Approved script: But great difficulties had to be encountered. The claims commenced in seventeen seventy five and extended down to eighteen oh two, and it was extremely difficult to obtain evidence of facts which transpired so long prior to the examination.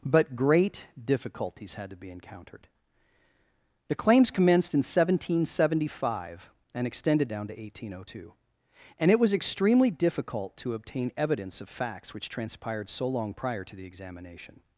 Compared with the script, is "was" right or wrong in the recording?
right